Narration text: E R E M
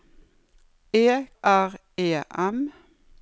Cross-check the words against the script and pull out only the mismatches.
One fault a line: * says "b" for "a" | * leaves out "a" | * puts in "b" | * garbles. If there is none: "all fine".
all fine